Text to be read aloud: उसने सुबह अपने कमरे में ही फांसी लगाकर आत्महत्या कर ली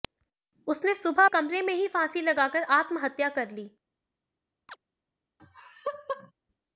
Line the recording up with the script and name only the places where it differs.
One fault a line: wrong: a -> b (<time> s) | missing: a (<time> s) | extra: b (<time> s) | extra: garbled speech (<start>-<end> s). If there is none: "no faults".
missing: अपने (1.2 s)